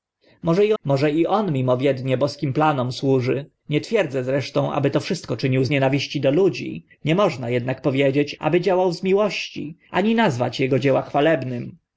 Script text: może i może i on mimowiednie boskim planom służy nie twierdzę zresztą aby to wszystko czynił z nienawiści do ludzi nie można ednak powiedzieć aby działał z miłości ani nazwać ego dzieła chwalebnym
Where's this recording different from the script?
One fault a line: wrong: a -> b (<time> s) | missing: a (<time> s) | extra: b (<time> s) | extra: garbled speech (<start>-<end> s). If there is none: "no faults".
no faults